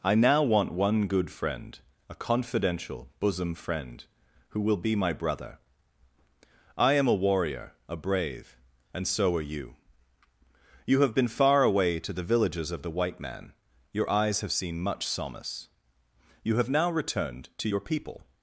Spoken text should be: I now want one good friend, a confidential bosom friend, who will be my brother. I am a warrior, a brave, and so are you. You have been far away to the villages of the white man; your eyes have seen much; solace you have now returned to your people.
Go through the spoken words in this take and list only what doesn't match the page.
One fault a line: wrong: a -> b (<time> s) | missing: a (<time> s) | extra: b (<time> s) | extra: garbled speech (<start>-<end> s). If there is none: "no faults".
no faults